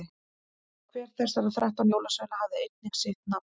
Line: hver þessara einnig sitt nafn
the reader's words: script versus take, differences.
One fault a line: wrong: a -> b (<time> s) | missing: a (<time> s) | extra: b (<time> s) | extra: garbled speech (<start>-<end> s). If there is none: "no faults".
extra: þrettán jólasveina hafði (1.6 s)